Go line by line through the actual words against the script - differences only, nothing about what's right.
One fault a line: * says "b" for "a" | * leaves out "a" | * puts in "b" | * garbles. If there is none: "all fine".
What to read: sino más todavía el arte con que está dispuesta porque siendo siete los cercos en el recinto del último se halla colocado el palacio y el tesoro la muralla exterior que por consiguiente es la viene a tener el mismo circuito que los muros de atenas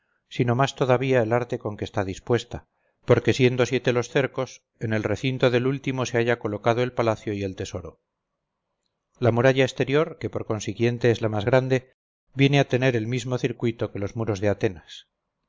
* puts in "más grande"